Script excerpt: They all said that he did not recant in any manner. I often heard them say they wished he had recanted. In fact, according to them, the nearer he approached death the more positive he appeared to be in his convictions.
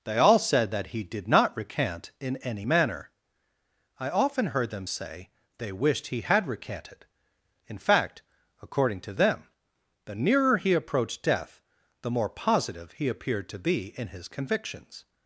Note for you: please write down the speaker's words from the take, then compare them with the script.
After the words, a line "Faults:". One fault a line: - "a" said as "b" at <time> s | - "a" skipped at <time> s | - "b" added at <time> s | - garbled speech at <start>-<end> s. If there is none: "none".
They all said that he did not recant in any manner. I often heard them say they wished he had recanted. In fact, according to them, the nearer he approached death the more positive he appeared to be in his convictions.
Faults:
none